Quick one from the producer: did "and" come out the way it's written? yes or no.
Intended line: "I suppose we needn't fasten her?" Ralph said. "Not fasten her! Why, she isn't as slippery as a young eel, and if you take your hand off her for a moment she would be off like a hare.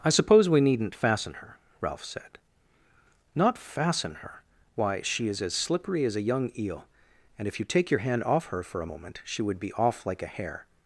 yes